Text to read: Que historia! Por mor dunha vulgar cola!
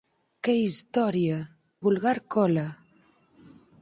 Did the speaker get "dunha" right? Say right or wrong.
wrong